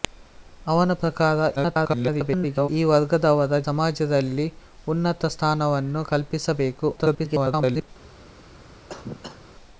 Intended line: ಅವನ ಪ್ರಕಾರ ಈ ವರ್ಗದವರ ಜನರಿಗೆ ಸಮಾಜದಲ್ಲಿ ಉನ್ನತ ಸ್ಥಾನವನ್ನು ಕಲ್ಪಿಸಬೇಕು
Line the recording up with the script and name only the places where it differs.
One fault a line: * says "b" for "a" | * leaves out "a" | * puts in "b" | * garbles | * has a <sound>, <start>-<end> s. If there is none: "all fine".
* garbles
* leaves out "ಜನರಿಗೆ"
* garbles
* has a cough, 8.9-9.4 s